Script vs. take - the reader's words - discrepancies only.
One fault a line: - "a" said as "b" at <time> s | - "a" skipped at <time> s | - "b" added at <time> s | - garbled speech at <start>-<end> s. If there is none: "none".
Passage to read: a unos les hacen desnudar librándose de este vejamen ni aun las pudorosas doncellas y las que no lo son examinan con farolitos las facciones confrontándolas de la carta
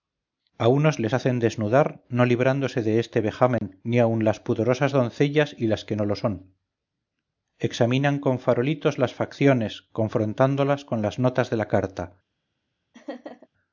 - "no" added at 2.1 s
- "con las notas" added at 10.8 s